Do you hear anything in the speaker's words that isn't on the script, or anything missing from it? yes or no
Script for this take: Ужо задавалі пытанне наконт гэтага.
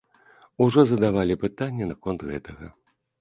no